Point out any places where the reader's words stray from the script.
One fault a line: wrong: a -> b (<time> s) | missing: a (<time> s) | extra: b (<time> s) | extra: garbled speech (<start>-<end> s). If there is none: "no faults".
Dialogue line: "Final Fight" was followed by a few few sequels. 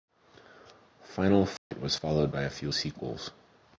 missing: few (2.7 s)